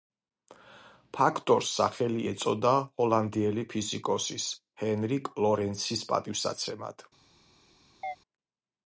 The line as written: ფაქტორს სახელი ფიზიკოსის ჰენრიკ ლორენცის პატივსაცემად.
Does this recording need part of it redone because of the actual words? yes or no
yes